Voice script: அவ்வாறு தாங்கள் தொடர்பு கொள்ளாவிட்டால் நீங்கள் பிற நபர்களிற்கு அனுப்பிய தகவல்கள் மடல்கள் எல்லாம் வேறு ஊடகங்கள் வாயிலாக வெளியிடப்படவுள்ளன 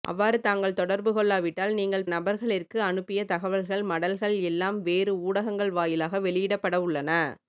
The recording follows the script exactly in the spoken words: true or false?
false